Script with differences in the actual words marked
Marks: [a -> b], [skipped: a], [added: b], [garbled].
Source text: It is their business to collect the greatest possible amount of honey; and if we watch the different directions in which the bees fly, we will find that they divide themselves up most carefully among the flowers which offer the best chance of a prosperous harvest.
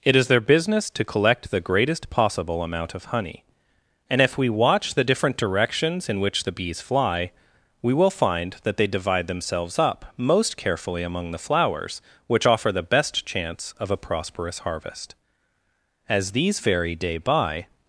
It is their business to collect the greatest possible amount of honey; and if we watch the different directions in which the bees fly, we will find that they divide themselves up most carefully among the flowers which offer the best chance of a prosperous harvest. [added: As these vary day by]